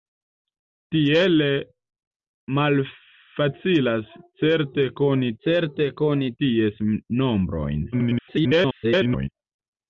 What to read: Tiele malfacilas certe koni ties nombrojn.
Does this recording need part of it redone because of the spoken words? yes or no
yes